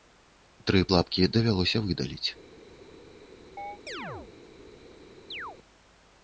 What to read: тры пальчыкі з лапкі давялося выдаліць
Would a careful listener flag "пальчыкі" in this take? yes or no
yes